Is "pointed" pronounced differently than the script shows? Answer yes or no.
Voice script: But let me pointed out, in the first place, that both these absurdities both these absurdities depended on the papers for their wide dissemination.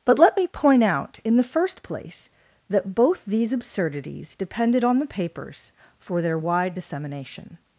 yes